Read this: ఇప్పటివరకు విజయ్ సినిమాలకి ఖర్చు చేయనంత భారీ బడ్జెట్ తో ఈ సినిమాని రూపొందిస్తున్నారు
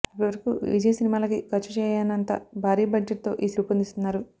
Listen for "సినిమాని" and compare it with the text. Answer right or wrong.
wrong